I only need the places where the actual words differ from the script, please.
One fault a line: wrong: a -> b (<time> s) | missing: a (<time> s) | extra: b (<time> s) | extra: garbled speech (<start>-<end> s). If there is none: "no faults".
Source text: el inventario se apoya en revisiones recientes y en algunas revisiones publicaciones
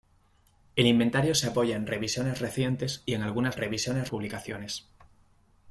no faults